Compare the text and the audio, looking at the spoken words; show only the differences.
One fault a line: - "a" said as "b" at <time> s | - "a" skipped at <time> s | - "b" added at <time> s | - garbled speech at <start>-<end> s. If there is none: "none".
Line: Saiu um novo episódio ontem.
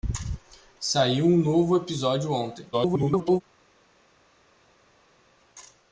- garbled speech at 2.7-3.4 s